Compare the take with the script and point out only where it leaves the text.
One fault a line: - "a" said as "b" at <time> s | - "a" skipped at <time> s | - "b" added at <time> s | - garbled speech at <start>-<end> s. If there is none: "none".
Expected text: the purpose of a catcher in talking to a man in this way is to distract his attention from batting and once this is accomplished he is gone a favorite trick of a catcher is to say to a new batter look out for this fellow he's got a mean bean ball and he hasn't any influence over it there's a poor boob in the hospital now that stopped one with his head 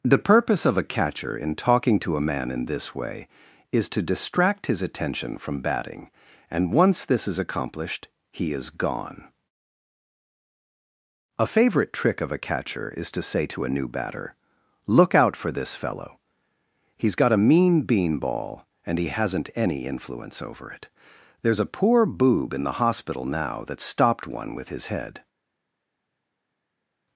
none